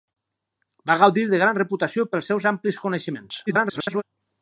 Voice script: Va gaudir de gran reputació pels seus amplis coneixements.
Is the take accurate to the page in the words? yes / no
no